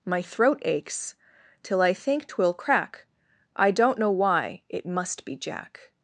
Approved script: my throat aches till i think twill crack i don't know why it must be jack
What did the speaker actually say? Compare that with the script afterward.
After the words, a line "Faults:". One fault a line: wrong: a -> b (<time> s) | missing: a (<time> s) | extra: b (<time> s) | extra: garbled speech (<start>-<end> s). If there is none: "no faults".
my throat aches till i think twill crack i don't know why it must be jack
Faults:
no faults